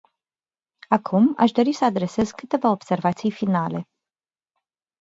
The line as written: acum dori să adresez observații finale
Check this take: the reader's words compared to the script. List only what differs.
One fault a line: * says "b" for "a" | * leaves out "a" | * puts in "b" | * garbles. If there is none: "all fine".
* puts in "aș"
* puts in "câteva"